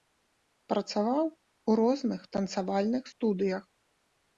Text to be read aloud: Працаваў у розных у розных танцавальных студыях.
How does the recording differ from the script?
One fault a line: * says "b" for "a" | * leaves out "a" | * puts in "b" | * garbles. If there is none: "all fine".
* leaves out "у розных"